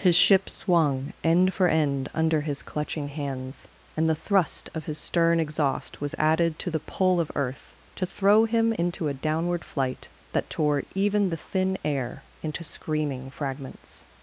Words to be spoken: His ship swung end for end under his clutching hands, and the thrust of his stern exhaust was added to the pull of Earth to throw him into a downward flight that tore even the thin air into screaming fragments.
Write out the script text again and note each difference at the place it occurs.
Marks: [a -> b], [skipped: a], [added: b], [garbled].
His ship swung end for end under his clutching hands, and the thrust of his stern exhaust was added to the pull of Earth to throw him into a downward flight that tore even the thin air into screaming fragments.